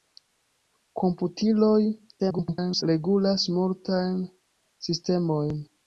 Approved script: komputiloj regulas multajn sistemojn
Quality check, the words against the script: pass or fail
fail